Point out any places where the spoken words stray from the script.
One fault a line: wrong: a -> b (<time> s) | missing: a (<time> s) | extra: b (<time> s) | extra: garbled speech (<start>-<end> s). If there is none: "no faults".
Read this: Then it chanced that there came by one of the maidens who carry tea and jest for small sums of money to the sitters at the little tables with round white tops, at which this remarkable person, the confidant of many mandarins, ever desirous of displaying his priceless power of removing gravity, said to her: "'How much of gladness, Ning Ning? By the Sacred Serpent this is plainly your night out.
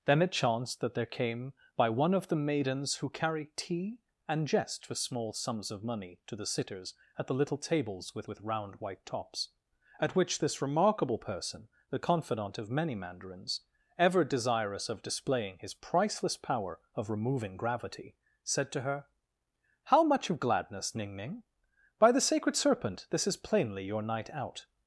extra: with (8.3 s)